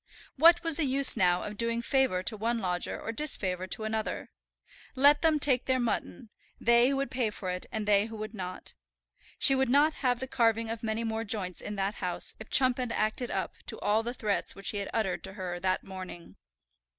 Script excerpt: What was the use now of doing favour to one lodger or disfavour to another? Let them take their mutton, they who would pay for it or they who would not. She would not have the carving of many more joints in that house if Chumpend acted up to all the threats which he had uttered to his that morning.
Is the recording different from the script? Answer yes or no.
yes